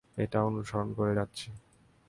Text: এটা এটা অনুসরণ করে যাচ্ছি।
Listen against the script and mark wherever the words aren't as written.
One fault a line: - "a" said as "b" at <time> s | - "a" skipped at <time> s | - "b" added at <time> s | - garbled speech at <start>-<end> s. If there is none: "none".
- "এটা" skipped at 0.4 s